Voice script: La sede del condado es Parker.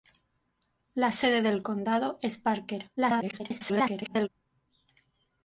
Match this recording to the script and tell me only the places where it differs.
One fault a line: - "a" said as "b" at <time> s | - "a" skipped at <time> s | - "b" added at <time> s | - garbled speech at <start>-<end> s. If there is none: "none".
- garbled speech at 3.0-4.3 s